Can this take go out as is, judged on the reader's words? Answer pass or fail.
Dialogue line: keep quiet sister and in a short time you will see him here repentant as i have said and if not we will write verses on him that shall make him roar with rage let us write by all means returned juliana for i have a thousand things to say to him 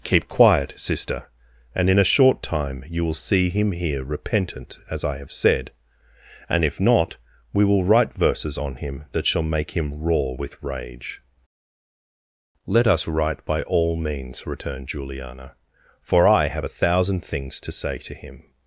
pass